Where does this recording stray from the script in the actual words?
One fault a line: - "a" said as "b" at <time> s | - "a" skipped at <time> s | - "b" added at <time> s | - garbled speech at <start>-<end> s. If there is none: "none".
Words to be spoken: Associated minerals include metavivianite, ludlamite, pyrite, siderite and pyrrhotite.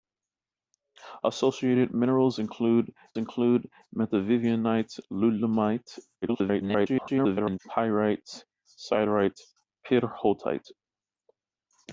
- "include" added at 3.2 s
- garbled speech at 6.2-7.6 s
- "and" skipped at 9.4 s